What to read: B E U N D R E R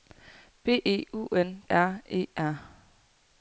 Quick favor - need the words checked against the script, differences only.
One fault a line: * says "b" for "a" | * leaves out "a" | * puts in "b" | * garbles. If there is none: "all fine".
* leaves out "D"